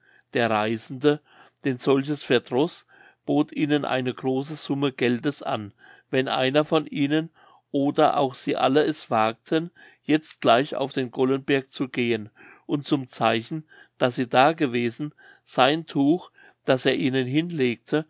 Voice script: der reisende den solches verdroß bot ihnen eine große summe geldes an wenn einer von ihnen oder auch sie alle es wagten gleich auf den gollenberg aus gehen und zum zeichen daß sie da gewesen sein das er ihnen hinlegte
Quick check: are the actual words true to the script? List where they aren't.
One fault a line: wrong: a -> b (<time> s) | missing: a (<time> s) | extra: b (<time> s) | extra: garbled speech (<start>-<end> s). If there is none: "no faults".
extra: jetzt (10.0 s)
wrong: aus -> zu (11.7 s)
extra: tuch (15.8 s)